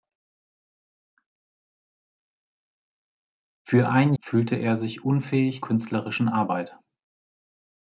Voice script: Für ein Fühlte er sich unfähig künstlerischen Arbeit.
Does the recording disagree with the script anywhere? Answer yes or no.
no